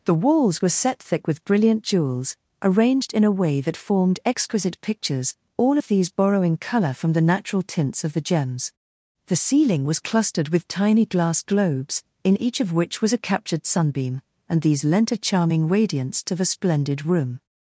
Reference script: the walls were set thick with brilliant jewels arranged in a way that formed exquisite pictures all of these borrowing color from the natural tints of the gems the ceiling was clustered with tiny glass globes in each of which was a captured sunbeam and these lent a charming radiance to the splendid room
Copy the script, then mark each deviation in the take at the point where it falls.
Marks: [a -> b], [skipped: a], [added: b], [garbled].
the walls were set thick with brilliant jewels arranged in a way that formed exquisite pictures all of these borrowing color from the natural tints of the gems the ceiling was clustered with tiny glass globes in each of which was a captured sunbeam and these lent a charming radiance to the splendid room